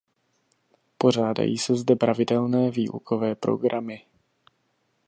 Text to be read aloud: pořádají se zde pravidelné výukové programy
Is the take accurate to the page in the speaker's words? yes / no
yes